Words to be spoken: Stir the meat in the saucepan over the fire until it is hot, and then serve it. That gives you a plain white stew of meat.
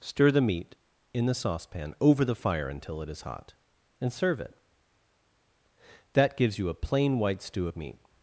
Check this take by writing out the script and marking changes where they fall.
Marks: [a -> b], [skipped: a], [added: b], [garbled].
Stir the meat in the saucepan over the fire until it is hot, and [skipped: then] serve it. That gives you a plain white stew of meat.